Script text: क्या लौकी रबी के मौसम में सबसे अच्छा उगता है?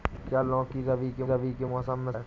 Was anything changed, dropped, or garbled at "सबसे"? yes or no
yes